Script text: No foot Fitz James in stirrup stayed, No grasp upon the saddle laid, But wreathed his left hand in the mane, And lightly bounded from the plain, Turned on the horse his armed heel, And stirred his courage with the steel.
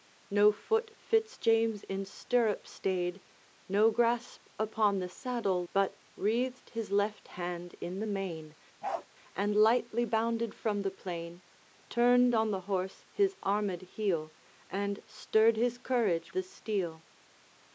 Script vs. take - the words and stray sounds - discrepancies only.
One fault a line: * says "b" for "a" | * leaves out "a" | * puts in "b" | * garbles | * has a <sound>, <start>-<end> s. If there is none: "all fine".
* leaves out "laid"
* has a bark, 8.8-9.1 s
* leaves out "with"